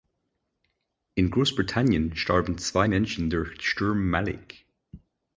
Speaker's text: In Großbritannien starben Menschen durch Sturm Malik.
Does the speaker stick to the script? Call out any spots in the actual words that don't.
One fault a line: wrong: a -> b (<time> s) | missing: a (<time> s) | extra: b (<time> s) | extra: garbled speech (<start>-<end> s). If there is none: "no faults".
extra: zwei (2.6 s)